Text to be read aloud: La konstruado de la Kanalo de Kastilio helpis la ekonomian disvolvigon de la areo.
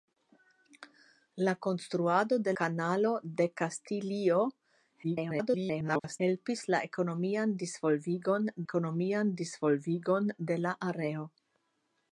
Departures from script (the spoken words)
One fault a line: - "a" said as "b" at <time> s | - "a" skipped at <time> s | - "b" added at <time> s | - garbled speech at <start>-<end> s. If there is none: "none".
- "la" skipped at 2.5 s
- garbled speech at 5.0-6.2 s
- "ekonomian disvolvigon" added at 8.7 s